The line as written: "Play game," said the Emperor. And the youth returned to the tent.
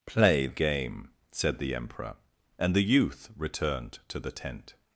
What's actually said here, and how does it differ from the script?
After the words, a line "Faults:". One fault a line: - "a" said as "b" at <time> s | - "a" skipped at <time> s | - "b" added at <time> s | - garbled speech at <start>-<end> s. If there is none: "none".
"Play game," said the Emperor. And the youth returned to the tent.
Faults:
none